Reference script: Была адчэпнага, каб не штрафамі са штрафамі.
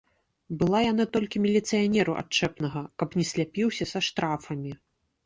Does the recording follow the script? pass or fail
fail